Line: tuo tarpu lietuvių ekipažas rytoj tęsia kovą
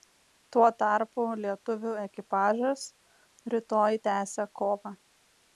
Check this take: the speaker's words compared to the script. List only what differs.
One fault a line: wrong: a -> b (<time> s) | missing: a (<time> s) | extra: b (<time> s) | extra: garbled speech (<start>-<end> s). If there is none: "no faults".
no faults